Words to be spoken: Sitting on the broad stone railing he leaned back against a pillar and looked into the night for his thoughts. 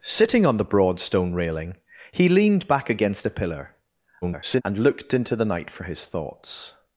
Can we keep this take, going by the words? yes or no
no